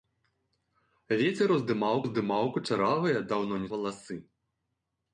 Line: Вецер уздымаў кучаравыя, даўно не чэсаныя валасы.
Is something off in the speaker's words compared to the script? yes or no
yes